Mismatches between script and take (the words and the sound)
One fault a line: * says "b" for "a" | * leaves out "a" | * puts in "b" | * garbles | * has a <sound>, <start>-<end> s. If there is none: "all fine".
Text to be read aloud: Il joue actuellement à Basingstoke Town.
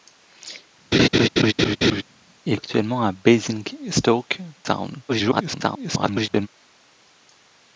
* has a laugh, 0.9-2.0 s
* leaves out "joue"
* garbles